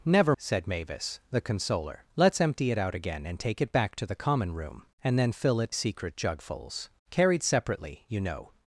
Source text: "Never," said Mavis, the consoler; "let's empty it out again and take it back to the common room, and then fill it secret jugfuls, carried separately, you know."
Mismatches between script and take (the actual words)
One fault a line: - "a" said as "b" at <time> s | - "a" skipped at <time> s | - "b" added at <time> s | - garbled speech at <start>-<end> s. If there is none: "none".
none